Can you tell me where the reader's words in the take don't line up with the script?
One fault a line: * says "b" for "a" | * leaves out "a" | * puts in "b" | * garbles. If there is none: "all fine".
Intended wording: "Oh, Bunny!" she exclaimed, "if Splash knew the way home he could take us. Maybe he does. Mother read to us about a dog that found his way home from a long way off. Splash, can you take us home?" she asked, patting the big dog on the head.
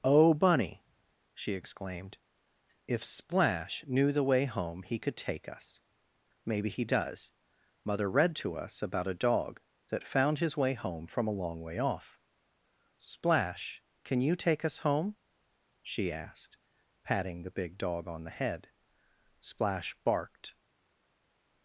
* puts in "Splash barked"